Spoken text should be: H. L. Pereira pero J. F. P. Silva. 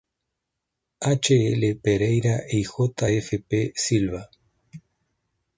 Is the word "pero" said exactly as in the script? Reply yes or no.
no